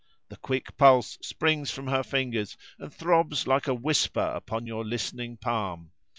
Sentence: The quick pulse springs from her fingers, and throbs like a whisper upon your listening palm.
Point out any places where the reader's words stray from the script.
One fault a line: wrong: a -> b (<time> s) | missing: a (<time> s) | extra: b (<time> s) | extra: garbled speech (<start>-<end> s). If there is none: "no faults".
no faults